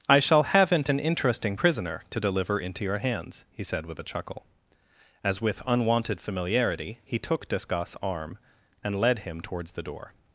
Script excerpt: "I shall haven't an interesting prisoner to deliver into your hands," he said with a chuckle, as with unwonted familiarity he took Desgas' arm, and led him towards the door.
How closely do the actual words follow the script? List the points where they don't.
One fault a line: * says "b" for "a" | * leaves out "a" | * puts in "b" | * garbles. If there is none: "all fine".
all fine